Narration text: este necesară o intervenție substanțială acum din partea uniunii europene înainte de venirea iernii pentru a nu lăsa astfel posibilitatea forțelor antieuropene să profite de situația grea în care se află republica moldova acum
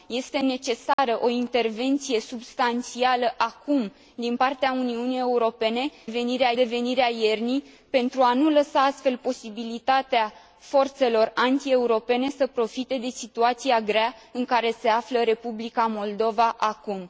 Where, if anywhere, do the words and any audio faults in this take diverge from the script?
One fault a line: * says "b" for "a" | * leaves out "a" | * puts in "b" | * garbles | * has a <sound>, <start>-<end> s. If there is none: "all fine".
* has a dropout, 0.9-1.0 s
* says "venirea" for "înainte"